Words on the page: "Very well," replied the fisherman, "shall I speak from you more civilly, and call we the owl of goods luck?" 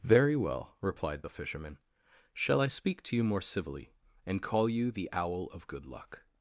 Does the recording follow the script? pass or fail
fail